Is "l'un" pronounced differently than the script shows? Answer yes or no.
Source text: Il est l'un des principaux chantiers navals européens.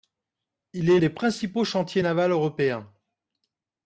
yes